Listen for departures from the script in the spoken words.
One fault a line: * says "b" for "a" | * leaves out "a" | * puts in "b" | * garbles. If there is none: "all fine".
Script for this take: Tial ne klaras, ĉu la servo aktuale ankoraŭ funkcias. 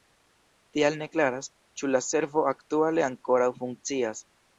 all fine